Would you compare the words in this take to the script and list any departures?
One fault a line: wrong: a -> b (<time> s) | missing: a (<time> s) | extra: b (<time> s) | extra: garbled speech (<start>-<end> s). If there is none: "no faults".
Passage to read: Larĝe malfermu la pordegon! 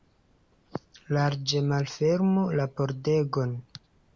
no faults